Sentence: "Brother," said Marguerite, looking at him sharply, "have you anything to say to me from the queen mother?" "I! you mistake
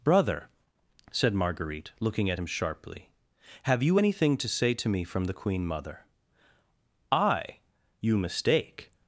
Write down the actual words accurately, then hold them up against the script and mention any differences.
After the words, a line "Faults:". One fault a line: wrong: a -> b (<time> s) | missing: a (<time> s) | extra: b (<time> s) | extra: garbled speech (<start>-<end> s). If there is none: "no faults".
"Brother," said Marguerite, looking at him sharply, "have you anything to say to me from the queen mother?" "I! you mistake
Faults:
no faults